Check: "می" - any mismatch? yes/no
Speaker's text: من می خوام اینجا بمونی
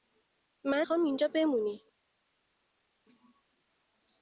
yes